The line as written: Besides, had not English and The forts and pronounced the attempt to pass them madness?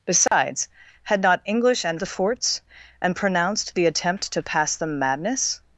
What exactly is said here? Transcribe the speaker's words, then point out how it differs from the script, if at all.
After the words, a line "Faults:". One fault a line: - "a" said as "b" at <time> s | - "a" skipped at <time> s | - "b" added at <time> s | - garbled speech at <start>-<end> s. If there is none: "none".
Besides, had not English and The forts and pronounced the attempt to pass them madness?
Faults:
none